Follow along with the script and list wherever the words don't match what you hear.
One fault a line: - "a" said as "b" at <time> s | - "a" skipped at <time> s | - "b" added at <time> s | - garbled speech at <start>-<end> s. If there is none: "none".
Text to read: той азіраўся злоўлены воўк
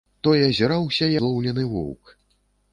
none